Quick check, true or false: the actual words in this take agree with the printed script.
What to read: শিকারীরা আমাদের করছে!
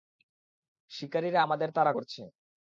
false